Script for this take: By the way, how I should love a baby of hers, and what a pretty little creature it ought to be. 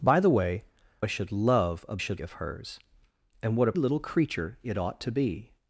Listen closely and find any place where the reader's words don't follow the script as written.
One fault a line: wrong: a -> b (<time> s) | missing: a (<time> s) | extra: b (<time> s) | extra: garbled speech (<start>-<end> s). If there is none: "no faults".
missing: how (0.6 s)
wrong: baby -> should (2.0 s)
missing: pretty (3.7 s)